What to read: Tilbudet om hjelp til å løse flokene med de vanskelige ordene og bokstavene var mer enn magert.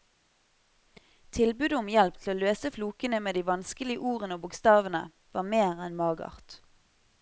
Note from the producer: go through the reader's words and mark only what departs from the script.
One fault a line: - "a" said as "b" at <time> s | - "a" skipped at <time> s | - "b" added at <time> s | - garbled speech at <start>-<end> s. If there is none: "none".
none